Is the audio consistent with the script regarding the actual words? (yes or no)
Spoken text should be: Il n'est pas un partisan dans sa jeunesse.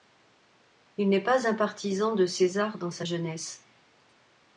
no